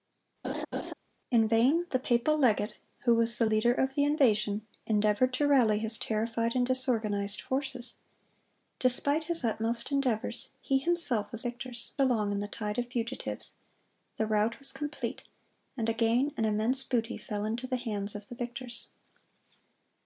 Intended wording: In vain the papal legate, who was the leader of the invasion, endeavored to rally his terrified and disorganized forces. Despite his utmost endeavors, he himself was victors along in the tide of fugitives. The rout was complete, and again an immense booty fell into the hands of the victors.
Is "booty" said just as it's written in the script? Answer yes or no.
yes